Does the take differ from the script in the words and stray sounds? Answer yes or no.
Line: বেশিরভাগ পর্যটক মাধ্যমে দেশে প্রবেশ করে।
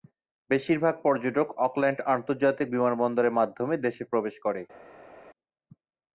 yes